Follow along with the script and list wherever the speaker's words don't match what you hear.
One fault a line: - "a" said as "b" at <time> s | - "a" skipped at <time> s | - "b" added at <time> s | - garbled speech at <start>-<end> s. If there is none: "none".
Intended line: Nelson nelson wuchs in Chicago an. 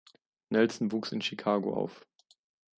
- "nelson" skipped at 0.9 s
- "an" said as "auf" at 1.7 s